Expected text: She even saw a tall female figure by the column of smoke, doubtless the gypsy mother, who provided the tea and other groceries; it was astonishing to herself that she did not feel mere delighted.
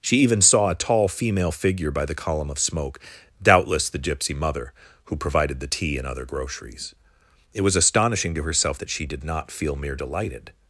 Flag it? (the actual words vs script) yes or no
no